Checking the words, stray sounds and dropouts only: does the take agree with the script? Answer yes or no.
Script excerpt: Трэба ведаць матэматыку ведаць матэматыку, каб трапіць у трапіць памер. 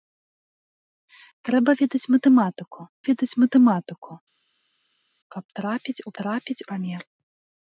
yes